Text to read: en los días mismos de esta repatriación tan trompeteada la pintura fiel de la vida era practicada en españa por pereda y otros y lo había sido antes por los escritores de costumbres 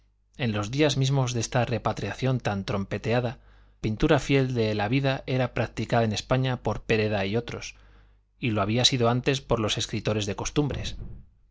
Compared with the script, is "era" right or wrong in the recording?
right